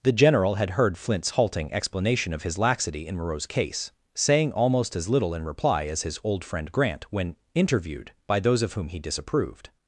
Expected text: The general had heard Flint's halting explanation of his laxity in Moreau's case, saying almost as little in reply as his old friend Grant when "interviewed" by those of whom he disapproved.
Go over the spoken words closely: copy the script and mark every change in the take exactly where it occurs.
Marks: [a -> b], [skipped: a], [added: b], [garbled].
The general had heard Flint's halting explanation of his laxity in Moreau's case, saying almost as little in reply as his old friend Grant when "interviewed" by those of whom he disapproved.